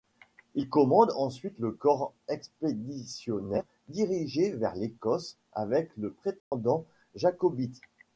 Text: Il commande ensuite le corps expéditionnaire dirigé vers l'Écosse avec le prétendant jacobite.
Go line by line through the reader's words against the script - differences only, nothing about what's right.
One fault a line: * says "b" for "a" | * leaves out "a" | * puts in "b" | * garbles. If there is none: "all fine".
all fine